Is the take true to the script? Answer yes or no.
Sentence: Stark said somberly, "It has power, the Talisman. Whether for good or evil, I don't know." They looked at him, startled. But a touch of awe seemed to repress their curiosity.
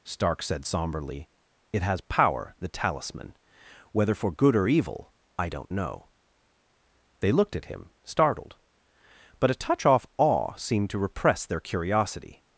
no